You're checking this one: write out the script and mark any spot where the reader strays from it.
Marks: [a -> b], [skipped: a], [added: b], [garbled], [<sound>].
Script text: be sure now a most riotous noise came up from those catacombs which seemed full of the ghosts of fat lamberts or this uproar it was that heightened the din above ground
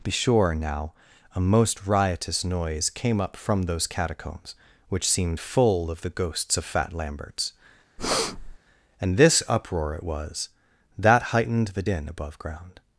be sure now a most riotous noise came up from those catacombs which seemed full of the ghosts of fat lamberts [breath] [or -> and] this uproar it was that heightened the din above ground